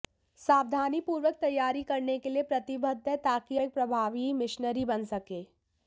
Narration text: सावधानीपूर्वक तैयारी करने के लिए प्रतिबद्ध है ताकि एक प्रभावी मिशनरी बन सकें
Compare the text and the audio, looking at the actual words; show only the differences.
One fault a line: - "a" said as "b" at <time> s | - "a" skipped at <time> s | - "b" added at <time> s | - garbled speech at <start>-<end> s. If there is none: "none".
none